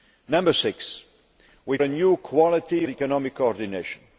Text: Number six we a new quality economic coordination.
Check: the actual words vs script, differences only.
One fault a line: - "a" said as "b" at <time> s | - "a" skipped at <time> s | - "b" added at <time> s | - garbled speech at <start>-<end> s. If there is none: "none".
none